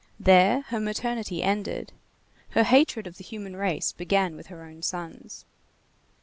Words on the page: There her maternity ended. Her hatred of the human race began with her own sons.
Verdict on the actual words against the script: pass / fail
pass